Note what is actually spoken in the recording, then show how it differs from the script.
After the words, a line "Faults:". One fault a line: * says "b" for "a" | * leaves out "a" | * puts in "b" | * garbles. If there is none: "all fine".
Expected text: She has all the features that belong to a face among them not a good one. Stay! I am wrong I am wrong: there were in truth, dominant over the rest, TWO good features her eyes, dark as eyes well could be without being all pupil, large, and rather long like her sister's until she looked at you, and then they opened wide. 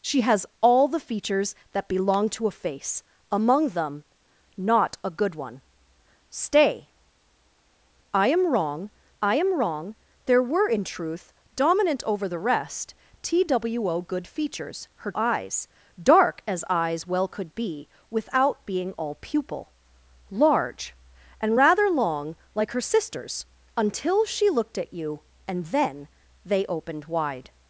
She has all the features that belong to a face among them not a good one. Stay! I am wrong I am wrong: there were in truth, dominant over the rest, TWO good features her eyes, dark as eyes well could be without being all pupil, large, and rather long like her sister's until she looked at you, and then they opened wide.
Faults:
all fine